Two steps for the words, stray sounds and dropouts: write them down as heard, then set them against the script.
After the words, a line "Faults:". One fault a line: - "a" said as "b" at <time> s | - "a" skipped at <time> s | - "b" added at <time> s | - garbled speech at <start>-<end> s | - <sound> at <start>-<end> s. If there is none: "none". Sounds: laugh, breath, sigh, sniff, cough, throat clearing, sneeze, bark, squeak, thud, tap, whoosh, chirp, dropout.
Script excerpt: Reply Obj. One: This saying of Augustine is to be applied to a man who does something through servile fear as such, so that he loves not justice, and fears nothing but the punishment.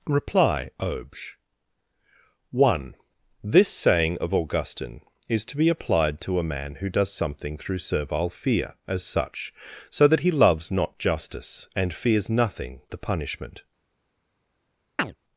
Reply Obj. One: This saying of Augustine is to be applied to a man who does something through servile fear as such, so that he loves not justice, and fears nothing the punishment.
Faults:
- "but" skipped at 12.8 s
- chirp at 15.0-15.2 s